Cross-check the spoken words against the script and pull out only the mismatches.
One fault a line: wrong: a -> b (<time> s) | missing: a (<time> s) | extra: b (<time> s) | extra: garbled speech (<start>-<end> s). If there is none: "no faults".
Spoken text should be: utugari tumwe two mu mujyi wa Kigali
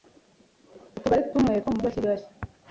no faults